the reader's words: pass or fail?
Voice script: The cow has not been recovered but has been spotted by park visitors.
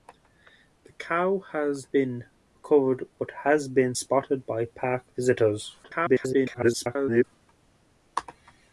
fail